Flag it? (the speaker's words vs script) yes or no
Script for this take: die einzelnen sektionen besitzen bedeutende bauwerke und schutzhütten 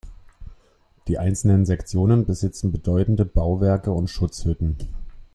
no